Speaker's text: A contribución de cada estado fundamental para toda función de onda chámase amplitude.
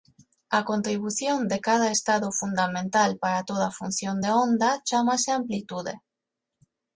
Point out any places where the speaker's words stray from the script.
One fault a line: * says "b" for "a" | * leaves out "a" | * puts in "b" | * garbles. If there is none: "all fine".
all fine